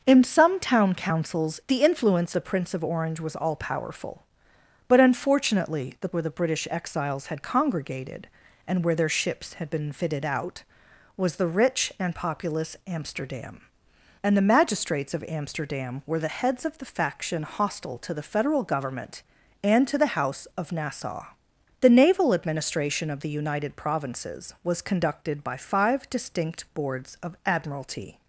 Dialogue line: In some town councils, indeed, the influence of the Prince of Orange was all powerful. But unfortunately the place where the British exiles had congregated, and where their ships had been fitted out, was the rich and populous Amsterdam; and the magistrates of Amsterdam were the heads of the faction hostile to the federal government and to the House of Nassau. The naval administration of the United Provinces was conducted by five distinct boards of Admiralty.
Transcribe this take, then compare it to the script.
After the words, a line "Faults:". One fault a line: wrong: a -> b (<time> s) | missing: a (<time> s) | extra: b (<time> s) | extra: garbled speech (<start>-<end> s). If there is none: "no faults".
In some town councils, the influence the Prince of Orange was all powerful. But unfortunately the where the British exiles had congregated, and where their ships had been fitted out, was the rich and populous Amsterdam; and the magistrates of Amsterdam were the heads of the faction hostile to the federal government and to the House of Nassau. The naval administration of the United Provinces was conducted by five distinct boards of Admiralty.
Faults:
missing: indeed (1.6 s)
missing: of (2.3 s)
missing: place (6.1 s)